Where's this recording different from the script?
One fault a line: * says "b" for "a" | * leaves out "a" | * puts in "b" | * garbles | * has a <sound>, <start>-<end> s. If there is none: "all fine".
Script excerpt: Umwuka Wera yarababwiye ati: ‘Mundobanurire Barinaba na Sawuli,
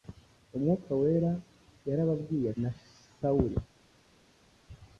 * leaves out "ati Mundobanurire Barinaba"